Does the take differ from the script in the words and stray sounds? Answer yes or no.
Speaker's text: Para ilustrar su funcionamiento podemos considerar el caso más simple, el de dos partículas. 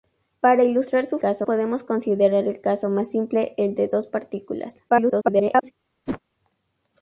yes